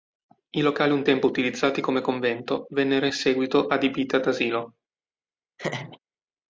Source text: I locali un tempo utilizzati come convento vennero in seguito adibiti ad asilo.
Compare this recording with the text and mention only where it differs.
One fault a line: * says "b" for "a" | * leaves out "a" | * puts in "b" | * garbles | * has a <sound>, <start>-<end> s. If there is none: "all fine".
* has a laugh, 5.6-6.0 s